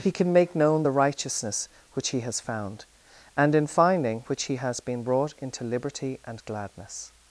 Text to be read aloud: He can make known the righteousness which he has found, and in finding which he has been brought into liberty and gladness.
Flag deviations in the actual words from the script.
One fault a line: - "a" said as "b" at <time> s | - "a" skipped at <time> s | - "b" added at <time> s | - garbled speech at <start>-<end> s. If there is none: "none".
none